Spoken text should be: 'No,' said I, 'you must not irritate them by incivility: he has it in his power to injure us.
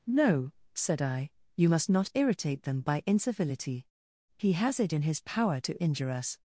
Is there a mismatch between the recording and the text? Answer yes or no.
no